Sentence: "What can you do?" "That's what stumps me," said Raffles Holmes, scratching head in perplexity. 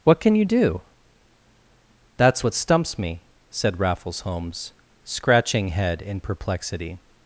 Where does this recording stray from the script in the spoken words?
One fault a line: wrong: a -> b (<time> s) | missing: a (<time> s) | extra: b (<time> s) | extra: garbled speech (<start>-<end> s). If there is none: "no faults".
no faults